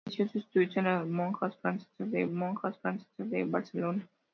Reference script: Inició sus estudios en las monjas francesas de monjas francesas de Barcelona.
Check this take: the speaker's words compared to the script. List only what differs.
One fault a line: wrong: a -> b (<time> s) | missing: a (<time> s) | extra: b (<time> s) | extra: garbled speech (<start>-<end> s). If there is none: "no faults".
no faults